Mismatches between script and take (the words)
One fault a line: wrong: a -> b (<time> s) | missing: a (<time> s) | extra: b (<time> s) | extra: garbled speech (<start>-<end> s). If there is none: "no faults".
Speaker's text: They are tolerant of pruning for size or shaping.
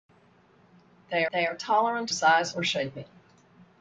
extra: they (1.3 s)
missing: of pruning for (2.1 s)